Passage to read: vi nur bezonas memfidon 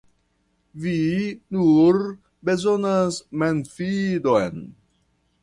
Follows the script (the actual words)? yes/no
yes